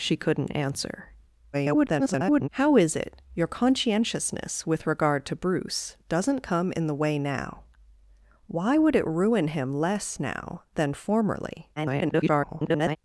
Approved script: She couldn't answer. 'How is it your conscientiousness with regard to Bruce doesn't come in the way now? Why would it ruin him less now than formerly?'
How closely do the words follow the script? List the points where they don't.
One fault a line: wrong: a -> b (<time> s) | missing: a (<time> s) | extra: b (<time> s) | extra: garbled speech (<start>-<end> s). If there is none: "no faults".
extra: garbled speech (1.5-2.5 s)
extra: garbled speech (11.8-13.0 s)